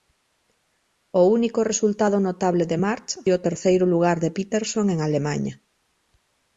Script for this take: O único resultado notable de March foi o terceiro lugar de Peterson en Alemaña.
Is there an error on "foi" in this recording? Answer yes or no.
yes